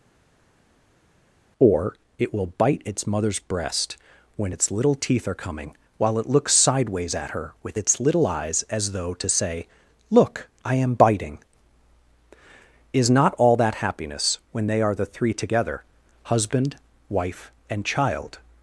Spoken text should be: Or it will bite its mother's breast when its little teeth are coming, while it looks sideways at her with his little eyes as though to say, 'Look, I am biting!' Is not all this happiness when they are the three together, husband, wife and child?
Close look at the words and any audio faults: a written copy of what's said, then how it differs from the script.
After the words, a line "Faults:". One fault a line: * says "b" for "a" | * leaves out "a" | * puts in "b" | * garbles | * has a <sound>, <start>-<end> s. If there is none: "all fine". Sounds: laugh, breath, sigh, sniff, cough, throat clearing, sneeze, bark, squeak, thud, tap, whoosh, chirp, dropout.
Or it will bite its mother's breast when its little teeth are coming, while it looks sideways at her with its little eyes as though to say, 'Look, I am biting!' Is not all that happiness when they are the three together, husband, wife and child?
Faults:
* says "its" for "his"
* says "that" for "this"